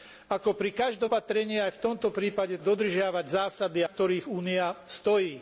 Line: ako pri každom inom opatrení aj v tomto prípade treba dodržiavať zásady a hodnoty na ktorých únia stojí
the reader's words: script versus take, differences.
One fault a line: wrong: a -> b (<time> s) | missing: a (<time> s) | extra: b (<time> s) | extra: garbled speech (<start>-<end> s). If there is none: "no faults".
missing: inom (1.1 s)
missing: treba (2.6 s)
missing: a hodnoty na (3.8 s)